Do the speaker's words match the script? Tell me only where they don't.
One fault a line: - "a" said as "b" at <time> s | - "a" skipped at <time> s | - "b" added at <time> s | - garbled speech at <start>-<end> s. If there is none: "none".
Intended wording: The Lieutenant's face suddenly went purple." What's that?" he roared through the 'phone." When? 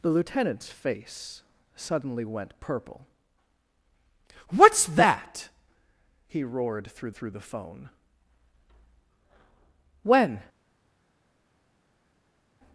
- "through" added at 7.1 s